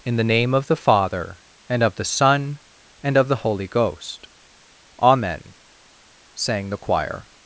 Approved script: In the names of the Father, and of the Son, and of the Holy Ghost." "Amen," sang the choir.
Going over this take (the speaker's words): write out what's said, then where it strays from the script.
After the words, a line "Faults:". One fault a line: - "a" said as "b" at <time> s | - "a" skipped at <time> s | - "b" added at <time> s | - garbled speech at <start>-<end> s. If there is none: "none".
In the name of the Father, and of the Son, and of the Holy Ghost." "Amen," sang the choir.
Faults:
- "names" said as "name" at 0.2 s